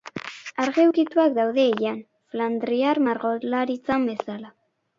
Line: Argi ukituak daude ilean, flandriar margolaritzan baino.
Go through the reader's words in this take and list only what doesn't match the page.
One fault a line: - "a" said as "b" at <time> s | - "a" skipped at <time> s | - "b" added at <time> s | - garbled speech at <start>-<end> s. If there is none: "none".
- "baino" said as "bezala" at 4.1 s